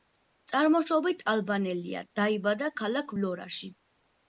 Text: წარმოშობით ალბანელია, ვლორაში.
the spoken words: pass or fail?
fail